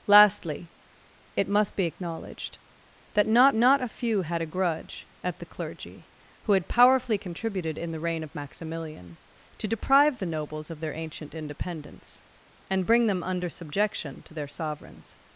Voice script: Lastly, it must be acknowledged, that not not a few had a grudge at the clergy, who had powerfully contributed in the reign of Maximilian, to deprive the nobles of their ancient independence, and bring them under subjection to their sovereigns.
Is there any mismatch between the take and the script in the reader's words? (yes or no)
no